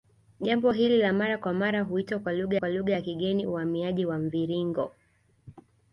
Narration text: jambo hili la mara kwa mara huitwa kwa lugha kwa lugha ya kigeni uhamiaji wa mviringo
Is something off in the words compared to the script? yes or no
no